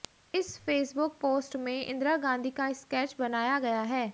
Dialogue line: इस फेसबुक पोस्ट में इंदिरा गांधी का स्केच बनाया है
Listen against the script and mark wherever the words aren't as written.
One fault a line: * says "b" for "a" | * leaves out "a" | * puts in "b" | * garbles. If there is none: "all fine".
* puts in "गया"